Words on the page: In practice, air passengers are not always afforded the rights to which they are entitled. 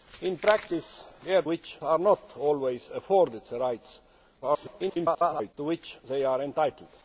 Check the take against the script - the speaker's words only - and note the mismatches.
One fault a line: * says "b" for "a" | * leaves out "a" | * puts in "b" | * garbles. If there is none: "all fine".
* says "which" for "passengers"
* garbles